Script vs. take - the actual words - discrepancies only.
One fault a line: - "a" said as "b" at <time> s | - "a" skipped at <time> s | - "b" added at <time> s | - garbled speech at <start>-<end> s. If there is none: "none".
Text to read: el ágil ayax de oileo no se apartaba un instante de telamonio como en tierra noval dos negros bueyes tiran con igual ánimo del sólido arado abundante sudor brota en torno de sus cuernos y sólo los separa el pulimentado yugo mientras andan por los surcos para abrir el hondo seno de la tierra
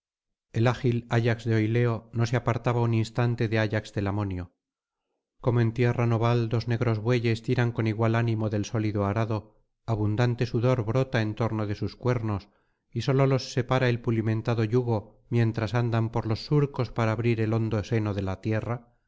- "ayax" added at 3.6 s